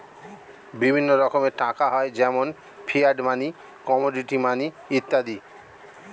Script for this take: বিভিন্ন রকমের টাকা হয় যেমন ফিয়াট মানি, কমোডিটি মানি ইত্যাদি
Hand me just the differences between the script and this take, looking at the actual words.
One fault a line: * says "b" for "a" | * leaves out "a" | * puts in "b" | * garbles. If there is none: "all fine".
all fine